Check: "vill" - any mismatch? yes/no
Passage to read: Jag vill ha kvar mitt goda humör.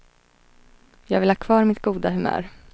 no